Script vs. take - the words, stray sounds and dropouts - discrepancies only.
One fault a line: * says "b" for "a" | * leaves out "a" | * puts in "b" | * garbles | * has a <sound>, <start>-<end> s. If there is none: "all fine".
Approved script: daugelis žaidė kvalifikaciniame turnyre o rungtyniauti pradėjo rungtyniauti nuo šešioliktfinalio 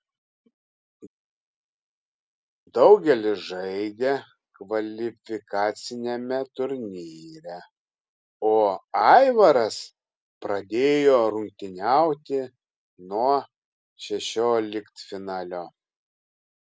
* says "aivaras" for "rungtyniauti"